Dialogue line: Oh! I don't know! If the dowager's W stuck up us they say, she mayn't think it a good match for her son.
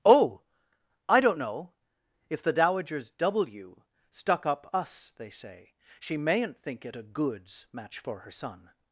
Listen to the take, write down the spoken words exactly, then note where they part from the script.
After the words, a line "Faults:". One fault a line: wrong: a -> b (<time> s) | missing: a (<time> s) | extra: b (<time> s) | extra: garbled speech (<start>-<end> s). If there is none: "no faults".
Oh! I don't know! If the dowager's W stuck up us they say, she mayn't think it a goods match for her son.
Faults:
wrong: good -> goods (7.0 s)